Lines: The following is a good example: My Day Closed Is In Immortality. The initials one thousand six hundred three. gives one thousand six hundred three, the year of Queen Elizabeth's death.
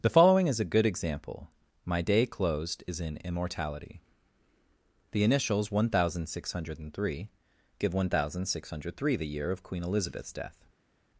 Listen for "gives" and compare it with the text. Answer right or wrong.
wrong